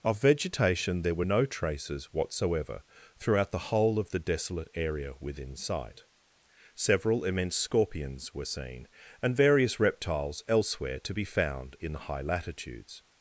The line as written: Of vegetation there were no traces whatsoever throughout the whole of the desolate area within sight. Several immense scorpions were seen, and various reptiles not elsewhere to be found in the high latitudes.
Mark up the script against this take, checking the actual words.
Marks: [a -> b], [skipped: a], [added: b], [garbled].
Of vegetation there were no traces whatsoever throughout the whole of the desolate area within sight. Several immense scorpions were seen, and various reptiles [skipped: not] elsewhere to be found in the high latitudes.